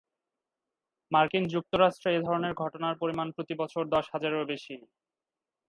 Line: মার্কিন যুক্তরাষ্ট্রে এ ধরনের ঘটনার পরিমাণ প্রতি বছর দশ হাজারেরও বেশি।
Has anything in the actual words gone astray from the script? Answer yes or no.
no